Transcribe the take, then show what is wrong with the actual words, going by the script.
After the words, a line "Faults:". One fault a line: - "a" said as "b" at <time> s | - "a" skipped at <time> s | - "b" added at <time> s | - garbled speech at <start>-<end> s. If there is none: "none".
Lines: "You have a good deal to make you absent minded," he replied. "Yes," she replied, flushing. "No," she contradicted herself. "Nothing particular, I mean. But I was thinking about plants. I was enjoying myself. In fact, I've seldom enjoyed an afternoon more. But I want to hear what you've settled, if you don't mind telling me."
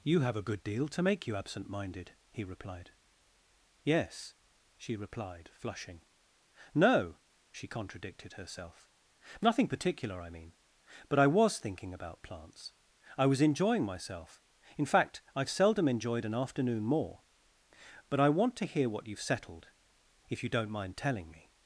"You have a good deal to make you absent minded," he replied. "Yes," she replied, flushing. "No," she contradicted herself. "Nothing particular, I mean. But I was thinking about plants. I was enjoying myself. In fact, I've seldom enjoyed an afternoon more. But I want to hear what you've settled, if you don't mind telling me."
Faults:
none